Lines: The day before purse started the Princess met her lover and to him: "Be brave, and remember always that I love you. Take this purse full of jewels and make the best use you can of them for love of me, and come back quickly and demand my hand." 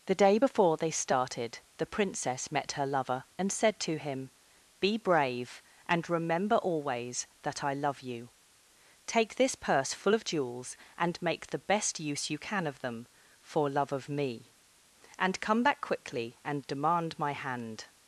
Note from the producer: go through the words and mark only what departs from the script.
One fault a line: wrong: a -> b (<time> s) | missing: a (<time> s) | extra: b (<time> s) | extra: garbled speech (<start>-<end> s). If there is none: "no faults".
wrong: purse -> they (0.8 s)
extra: said (3.5 s)